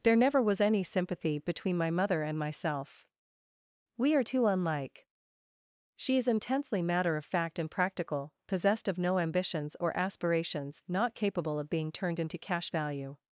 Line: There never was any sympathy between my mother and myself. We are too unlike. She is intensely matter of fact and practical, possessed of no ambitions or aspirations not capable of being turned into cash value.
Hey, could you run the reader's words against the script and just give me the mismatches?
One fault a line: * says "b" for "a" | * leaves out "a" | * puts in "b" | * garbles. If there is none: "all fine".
all fine